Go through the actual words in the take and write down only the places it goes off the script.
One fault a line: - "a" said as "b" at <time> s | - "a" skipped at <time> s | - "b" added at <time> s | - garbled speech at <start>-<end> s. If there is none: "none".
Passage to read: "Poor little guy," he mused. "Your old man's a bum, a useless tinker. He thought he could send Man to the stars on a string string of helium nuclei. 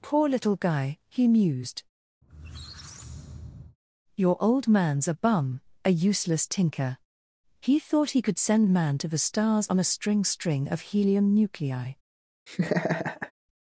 none